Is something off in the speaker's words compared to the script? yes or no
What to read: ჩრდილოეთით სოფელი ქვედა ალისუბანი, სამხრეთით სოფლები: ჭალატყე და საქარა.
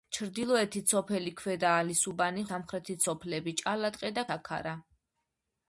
no